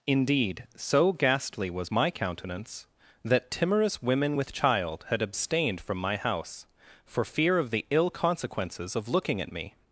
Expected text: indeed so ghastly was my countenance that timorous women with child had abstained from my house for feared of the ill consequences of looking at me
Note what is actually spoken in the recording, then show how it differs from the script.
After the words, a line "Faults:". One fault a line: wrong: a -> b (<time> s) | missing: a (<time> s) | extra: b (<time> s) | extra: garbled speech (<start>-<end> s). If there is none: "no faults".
indeed so ghastly was my countenance that timorous women with child had abstained from my house for fear of the ill consequences of looking at me
Faults:
wrong: feared -> fear (7.2 s)